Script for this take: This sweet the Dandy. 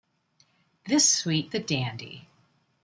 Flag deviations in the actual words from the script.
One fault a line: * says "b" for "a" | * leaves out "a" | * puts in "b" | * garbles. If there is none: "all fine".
all fine